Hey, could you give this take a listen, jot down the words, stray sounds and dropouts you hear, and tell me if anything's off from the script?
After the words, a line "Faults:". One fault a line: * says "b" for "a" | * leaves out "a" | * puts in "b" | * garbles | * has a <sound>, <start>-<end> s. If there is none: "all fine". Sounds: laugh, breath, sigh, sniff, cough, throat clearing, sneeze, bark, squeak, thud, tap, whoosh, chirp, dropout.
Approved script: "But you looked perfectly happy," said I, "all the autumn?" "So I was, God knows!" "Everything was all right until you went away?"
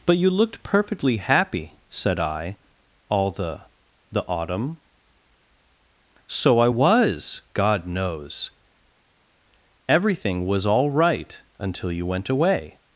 "But you looked perfectly happy," said I, "all the the autumn?" "So I was, God knows!" "Everything was all right until you went away?"
Faults:
* puts in "the"